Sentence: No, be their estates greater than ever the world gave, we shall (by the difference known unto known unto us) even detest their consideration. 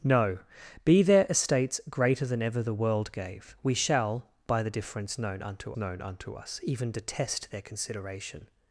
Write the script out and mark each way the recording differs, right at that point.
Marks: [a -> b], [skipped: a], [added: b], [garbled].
No, be their estates greater than ever the world gave, we shall (by the difference known unto known unto us) even detest their consideration.